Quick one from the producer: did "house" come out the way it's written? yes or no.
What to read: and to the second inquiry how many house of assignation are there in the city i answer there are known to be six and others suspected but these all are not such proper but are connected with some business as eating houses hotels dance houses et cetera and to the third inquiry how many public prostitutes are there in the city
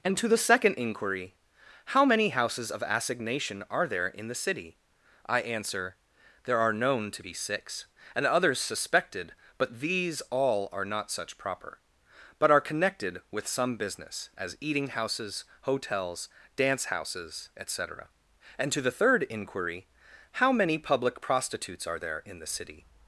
no